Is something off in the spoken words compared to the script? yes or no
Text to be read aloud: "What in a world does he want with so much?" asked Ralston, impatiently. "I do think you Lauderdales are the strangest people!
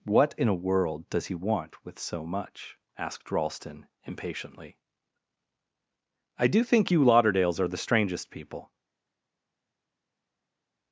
no